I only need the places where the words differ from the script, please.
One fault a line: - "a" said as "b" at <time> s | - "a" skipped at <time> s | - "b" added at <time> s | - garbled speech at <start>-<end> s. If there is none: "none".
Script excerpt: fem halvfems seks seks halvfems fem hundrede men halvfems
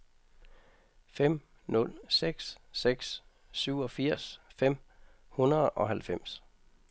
- "halvfems" said as "nul" at 1.7 s
- "halvfems" said as "syvogfirs" at 3.5 s
- "men" said as "og" at 5.7 s